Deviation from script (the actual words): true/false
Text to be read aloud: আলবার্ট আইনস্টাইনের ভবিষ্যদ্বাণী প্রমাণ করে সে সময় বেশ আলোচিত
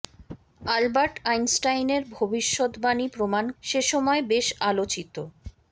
true